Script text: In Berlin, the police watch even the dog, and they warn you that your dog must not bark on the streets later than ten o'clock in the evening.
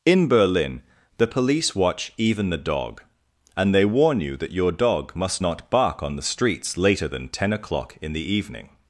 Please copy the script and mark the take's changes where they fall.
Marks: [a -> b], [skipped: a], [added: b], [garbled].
In Berlin, the police watch even the dog, and they warn you that your dog must not bark on the streets later than ten o'clock in the evening.